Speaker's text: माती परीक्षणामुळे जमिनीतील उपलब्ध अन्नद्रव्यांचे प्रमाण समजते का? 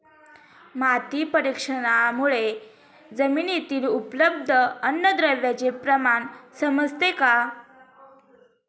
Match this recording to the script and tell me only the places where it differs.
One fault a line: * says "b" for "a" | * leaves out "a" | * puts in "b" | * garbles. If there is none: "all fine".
all fine